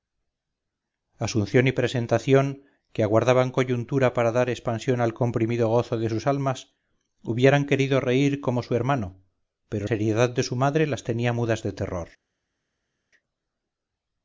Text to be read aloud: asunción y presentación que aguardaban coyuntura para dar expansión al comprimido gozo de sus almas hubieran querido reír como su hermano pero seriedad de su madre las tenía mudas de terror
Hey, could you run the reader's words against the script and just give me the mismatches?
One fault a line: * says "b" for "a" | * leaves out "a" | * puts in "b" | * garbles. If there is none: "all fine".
all fine